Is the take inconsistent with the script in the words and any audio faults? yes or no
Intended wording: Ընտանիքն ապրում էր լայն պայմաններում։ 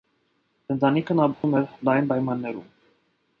yes